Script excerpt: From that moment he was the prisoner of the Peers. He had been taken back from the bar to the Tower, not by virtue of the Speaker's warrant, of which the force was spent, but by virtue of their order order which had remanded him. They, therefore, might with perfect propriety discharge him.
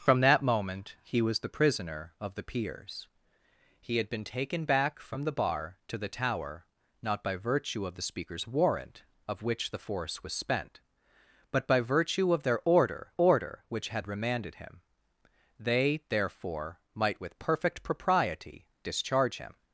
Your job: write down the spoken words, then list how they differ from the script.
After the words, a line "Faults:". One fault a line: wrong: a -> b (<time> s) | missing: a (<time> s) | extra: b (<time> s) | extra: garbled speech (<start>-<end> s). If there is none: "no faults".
From that moment he was the prisoner of the Peers. He had been taken back from the bar to the Tower, not by virtue of the Speaker's warrant, of which the force was spent, but by virtue of their order order which had remanded him. They, therefore, might with perfect propriety discharge him.
Faults:
no faults